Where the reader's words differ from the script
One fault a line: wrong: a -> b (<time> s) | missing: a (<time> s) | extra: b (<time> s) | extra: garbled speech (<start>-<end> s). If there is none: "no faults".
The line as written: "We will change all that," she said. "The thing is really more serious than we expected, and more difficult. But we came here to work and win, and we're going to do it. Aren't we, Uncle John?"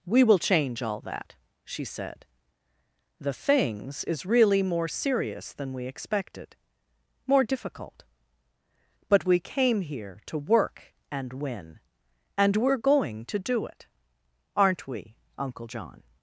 wrong: thing -> things (3.3 s)
missing: and (6.5 s)